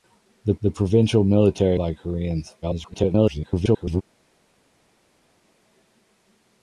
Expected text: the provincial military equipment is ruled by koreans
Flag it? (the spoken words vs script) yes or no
yes